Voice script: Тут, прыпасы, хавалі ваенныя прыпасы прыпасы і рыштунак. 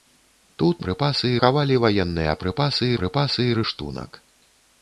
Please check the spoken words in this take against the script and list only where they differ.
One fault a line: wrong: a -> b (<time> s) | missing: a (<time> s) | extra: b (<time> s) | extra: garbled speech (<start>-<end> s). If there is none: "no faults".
no faults